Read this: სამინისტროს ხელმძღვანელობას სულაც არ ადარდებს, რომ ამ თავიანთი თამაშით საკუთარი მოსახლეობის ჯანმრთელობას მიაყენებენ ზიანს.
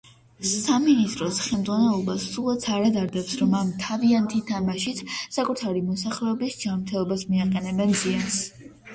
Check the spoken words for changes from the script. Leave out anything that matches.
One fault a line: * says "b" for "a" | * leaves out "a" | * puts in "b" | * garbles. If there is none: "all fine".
all fine